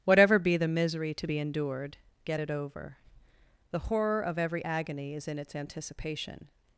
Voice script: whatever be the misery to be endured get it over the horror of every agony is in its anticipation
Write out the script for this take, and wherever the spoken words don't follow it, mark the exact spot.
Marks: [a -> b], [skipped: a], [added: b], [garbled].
whatever be the misery to be endured get it over the horror of every agony is in its anticipation